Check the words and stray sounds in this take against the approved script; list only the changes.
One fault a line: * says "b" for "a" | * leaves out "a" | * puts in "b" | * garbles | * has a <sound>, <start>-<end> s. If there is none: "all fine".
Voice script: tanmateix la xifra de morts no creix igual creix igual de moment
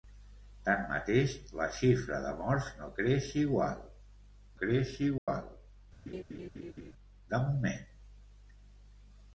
* has a dropout, 5.2-5.3 s
* has a laugh, 6.1-6.9 s